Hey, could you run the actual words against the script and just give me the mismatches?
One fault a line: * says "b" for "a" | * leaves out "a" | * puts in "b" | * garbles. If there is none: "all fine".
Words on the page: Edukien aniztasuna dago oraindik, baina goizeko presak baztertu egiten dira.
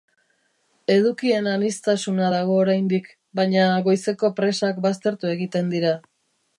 all fine